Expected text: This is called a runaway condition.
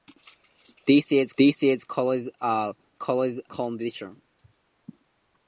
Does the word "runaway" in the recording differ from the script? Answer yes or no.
yes